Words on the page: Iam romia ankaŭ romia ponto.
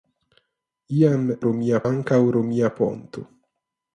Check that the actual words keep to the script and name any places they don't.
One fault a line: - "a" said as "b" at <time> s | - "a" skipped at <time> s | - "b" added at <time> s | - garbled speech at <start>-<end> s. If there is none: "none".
none